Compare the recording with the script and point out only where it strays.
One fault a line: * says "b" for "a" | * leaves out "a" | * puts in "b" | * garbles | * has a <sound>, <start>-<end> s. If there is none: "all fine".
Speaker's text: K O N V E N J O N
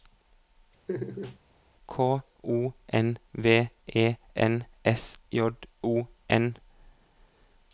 * has a laugh, 0.9-1.4 s
* puts in "S"